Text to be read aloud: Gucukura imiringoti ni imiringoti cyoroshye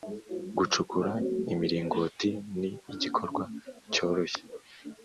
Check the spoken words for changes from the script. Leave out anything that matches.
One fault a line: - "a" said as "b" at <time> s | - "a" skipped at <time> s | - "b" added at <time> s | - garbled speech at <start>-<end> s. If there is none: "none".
- "imiringoti" said as "igikorwa" at 2.9 s